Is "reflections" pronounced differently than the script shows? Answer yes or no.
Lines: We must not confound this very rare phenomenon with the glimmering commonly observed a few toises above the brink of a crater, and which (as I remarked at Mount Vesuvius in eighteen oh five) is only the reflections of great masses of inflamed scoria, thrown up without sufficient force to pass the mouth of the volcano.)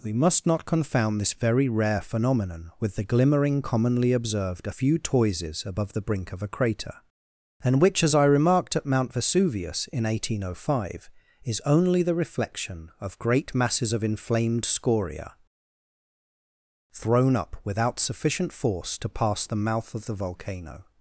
yes